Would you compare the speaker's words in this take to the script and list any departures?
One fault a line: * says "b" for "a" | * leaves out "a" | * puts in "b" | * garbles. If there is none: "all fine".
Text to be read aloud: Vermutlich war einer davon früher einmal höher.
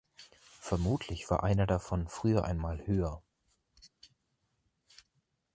all fine